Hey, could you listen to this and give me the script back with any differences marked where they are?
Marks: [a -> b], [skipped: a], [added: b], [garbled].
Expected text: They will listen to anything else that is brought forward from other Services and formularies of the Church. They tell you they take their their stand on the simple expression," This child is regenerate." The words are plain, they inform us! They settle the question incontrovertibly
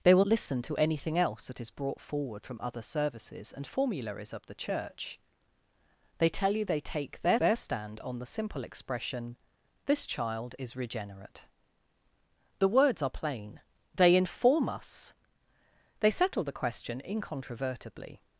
They will listen to anything else that is brought forward from other Services and formularies of the Church. They tell you they take their their stand on the simple expression," This child is regenerate." The words are plain, they inform us! They settle the question incontrovertibly